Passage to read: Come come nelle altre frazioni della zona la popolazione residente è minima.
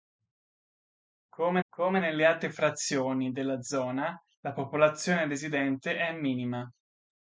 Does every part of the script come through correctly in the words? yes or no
yes